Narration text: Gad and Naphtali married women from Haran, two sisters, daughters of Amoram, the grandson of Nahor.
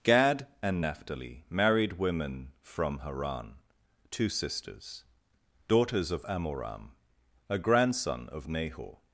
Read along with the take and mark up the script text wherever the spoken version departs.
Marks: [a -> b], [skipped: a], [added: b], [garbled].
Gad and Naphtali married women from Haran, two sisters, daughters of Amoram, [the -> a] grandson of Nahor.